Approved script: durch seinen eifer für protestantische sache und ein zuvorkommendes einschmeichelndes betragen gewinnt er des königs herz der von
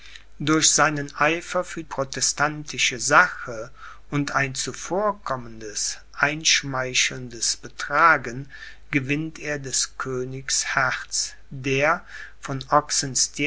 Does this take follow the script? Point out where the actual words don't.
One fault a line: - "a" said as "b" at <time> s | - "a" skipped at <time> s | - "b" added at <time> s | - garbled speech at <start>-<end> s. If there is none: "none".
none